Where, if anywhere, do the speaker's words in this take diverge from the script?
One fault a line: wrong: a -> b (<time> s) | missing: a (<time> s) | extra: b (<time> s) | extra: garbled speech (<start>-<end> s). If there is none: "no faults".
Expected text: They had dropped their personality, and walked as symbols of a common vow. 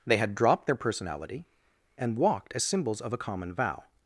no faults